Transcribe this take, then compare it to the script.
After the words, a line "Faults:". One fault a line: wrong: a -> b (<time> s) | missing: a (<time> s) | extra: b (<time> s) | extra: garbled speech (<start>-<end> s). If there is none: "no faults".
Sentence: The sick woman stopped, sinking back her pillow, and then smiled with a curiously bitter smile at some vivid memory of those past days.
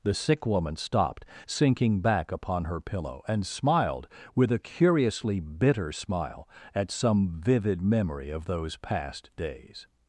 The sick woman stopped, sinking back upon her pillow, and smiled with a curiously bitter smile at some vivid memory of those past days.
Faults:
extra: upon (2.3 s)
missing: then (3.5 s)